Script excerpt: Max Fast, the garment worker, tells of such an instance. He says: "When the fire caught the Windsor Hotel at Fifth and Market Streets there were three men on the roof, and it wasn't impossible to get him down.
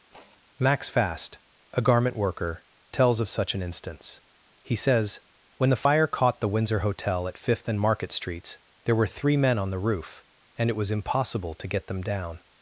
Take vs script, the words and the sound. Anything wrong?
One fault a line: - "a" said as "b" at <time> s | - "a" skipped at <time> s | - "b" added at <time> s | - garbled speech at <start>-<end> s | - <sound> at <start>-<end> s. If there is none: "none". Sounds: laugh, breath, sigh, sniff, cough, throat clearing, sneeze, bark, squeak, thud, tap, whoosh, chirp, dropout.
- sigh at 0.1-0.4 s
- "the" said as "a" at 1.7 s
- "wasn't" said as "was" at 10.8 s
- "him" said as "them" at 11.9 s